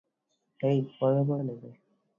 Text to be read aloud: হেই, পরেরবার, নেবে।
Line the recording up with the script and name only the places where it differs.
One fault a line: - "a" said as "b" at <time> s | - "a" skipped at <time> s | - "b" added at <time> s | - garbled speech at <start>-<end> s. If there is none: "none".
none